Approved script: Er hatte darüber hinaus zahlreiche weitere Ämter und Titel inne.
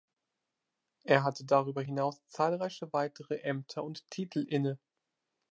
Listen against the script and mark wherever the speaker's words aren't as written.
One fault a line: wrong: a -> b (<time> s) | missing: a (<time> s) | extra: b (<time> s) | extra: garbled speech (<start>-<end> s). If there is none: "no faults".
no faults